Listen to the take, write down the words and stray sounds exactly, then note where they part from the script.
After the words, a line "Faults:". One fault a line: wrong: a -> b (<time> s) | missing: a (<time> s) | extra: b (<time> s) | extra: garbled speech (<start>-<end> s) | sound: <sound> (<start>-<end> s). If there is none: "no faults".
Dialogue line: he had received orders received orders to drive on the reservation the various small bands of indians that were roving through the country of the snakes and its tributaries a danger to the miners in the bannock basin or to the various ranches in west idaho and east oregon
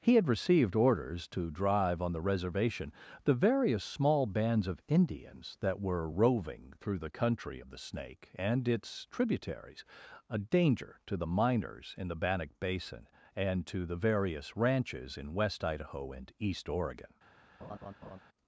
he had received orders to drive on the reservation the various small bands of indians that were roving through the country of the snake and its tributaries a danger to the miners in the bannock basin and to the various ranches in west idaho and east oregon
Faults:
missing: received orders (1.3 s)
wrong: snakes -> snake (7.8 s)
wrong: or -> and (13.3 s)
sound: laugh (17.6-18.2 s)